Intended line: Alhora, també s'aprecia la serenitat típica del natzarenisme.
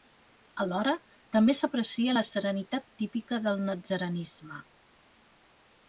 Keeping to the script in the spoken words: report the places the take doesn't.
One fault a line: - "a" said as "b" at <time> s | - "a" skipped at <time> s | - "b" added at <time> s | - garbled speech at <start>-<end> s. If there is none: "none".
none